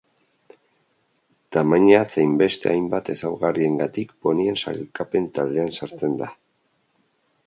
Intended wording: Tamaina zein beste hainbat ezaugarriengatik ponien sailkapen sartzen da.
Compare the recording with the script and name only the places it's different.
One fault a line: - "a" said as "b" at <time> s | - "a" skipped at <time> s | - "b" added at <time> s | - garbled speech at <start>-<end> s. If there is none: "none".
- "taldean" added at 5.4 s